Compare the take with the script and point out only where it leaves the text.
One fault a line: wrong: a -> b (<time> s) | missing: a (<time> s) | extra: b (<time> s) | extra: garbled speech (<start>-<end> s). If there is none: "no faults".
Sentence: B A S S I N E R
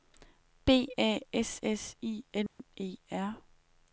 no faults